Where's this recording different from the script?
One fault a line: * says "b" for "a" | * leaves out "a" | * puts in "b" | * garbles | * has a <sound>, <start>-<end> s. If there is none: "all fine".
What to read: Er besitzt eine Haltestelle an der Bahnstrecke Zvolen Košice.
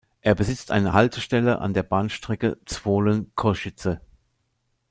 all fine